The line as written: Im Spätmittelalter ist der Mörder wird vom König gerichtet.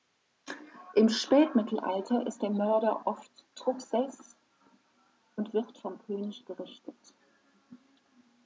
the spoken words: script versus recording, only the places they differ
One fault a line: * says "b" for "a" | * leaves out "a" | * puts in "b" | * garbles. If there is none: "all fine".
* puts in "oft Truchsess und"